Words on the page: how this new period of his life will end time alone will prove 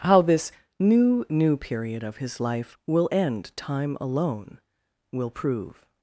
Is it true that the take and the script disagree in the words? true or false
true